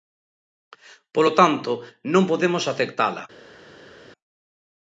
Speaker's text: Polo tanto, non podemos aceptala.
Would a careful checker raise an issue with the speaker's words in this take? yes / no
no